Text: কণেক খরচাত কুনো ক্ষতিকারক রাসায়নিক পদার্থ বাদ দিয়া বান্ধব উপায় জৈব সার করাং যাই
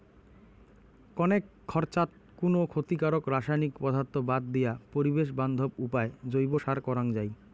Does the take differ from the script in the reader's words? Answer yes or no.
yes